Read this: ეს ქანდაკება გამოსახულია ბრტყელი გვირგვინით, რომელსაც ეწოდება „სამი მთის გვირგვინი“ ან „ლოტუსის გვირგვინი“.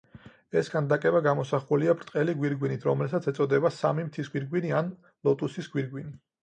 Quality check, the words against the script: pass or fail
pass